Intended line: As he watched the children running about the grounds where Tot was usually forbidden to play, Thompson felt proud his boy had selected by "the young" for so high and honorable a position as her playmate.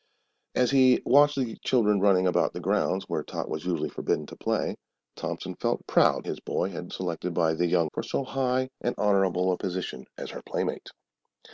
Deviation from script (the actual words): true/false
false